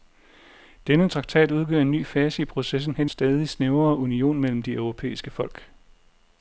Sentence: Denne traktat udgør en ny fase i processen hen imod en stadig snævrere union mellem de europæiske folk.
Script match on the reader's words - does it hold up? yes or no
no